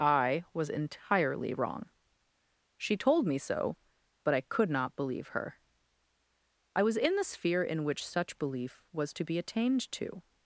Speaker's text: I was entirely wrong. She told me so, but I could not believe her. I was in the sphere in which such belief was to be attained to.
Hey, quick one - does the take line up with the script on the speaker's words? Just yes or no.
yes